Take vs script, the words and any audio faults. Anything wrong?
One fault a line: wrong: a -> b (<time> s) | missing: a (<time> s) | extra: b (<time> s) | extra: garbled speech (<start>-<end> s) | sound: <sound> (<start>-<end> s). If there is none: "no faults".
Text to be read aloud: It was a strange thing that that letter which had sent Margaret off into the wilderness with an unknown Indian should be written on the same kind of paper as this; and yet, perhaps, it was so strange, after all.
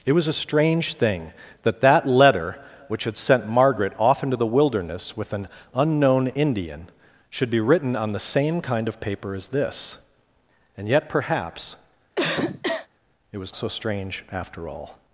sound: cough (12.2-12.9 s)